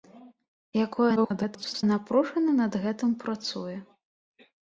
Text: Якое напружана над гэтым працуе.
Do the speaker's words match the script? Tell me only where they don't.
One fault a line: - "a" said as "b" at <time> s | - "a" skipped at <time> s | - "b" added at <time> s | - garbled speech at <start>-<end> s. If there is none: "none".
- garbled speech at 1.2-1.8 s